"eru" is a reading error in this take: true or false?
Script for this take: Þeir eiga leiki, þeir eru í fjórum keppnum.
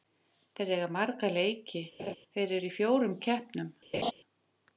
false